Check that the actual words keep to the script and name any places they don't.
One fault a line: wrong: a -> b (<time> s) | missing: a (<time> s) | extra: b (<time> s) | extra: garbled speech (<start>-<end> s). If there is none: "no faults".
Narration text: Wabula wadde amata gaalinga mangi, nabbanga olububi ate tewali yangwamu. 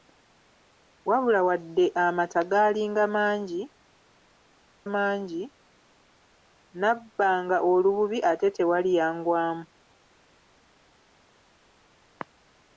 extra: mangi (4.9 s)